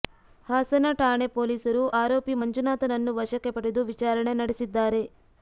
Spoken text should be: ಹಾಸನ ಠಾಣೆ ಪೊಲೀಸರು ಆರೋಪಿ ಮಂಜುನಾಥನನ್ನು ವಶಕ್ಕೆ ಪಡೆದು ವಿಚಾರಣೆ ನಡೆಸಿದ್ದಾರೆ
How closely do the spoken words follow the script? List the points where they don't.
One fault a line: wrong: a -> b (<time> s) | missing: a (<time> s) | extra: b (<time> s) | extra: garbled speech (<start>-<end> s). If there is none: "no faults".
no faults